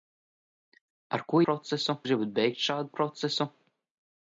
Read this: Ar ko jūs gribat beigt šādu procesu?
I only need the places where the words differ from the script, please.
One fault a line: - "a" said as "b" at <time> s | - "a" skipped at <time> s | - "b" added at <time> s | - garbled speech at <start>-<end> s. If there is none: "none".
- "jūs" said as "procesu" at 1.5 s